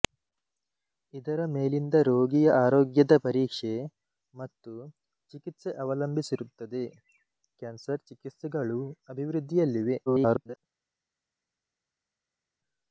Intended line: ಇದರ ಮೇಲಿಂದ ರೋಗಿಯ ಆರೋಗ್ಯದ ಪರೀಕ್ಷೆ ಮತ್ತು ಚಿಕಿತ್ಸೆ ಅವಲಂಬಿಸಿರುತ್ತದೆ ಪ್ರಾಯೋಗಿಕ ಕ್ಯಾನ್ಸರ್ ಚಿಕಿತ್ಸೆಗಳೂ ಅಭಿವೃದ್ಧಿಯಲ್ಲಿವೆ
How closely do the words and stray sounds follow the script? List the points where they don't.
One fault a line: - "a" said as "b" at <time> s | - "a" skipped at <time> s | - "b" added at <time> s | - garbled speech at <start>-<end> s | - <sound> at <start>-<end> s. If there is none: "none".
- "ಪ್ರಾಯೋಗಿಕ" skipped at 6.8 s
- garbled speech at 10.1-10.6 s